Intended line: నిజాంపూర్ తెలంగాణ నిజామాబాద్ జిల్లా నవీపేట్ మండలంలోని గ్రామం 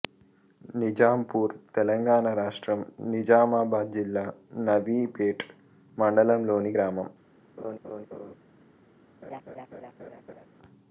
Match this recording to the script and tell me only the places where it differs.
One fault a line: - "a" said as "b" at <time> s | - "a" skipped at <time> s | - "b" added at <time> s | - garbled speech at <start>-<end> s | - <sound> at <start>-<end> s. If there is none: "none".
- "రాష్ట్రం" added at 2.4 s
- laugh at 7.6-8.3 s
- laugh at 9.2-10.5 s